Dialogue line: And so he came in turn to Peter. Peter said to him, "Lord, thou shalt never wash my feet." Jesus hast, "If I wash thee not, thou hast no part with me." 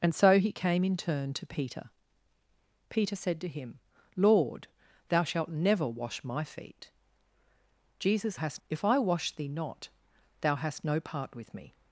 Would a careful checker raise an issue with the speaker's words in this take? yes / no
no